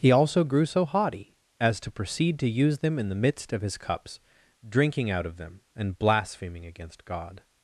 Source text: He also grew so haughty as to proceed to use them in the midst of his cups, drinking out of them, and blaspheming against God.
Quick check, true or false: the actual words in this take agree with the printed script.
true